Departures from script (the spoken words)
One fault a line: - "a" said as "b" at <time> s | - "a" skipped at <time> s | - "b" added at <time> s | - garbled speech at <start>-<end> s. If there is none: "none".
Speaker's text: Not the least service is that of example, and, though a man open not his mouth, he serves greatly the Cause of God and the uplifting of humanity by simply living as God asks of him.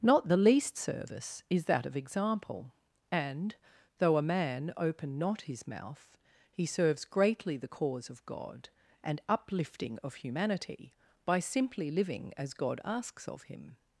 - "the" skipped at 9.2 s